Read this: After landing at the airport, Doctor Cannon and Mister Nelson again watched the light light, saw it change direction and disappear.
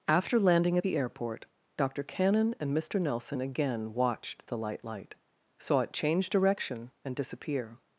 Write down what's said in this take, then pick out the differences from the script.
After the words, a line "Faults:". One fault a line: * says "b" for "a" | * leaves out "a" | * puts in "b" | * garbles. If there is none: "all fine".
After landing at the airport, Doctor Cannon and Mister Nelson again watched the light light, saw it change direction and disappear.
Faults:
all fine